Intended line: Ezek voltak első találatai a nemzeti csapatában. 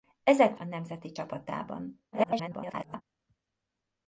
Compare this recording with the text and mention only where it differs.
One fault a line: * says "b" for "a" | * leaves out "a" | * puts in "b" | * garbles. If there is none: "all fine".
* leaves out "voltak első találatai"
* garbles